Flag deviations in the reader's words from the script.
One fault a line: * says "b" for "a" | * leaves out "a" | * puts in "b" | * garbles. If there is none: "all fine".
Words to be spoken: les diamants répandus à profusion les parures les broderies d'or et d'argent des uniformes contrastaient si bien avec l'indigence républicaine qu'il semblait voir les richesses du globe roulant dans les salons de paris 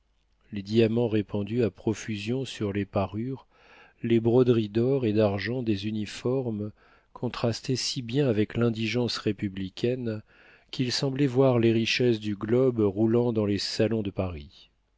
* puts in "sur"